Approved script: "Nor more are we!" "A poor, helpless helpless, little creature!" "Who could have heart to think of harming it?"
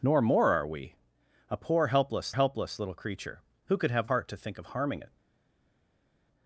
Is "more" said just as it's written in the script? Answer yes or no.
yes